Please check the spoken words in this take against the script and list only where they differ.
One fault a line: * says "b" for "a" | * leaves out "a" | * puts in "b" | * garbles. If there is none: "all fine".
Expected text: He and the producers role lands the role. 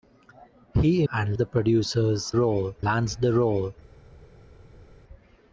all fine